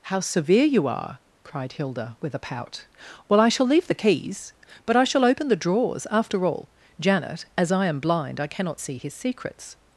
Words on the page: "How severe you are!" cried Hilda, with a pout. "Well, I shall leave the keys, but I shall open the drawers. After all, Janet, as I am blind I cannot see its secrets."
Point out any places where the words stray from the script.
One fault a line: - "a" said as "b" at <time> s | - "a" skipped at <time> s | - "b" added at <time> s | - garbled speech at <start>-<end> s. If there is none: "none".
- "its" said as "his" at 9.0 s